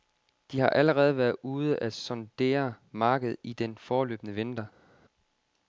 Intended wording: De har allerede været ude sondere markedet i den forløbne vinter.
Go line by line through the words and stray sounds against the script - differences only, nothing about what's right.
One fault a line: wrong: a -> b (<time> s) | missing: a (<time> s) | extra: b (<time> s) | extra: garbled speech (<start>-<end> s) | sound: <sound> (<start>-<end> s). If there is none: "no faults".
extra: at (1.8 s)